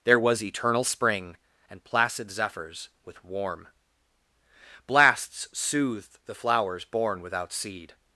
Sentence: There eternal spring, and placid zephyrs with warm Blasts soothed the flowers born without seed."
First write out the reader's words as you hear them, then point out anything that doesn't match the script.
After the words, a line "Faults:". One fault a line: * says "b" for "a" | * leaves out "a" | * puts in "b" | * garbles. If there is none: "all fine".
There was eternal spring, and placid zephyrs with warm Blasts soothed the flowers born without seed."
Faults:
* puts in "was"